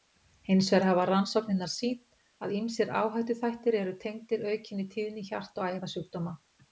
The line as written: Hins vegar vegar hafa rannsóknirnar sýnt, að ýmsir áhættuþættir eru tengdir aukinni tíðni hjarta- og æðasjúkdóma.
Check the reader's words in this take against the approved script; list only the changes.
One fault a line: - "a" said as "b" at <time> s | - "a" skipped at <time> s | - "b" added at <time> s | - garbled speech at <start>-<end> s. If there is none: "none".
- "vegar" skipped at 0.8 s